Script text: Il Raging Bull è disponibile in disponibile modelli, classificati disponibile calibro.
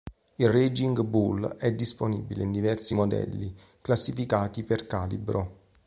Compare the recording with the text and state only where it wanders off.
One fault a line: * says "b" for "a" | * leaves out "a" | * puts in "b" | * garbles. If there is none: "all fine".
* says "diversi" for "disponibile"
* says "per" for "disponibile"